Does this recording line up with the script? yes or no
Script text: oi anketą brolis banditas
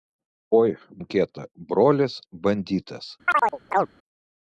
yes